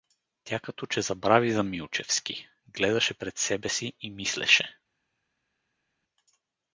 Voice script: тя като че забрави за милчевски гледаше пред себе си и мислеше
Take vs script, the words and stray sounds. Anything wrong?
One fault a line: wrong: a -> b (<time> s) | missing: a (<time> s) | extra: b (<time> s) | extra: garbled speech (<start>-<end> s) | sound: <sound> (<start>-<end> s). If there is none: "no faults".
no faults